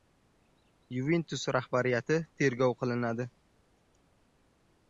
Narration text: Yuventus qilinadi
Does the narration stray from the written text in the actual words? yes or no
yes